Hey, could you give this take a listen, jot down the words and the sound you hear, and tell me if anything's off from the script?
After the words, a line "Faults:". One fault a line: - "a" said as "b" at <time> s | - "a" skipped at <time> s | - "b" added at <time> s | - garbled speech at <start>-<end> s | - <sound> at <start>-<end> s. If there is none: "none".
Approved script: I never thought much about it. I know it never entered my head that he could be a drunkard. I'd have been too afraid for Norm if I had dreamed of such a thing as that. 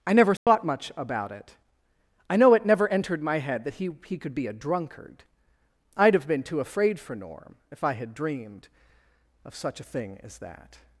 I never thought much about it. I know it never entered my head that he he could be a drunkard. I'd have been too afraid for Norm if I had dreamed of such a thing as that.
Faults:
- dropout at 0.4-0.5 s
- "he" added at 4.1 s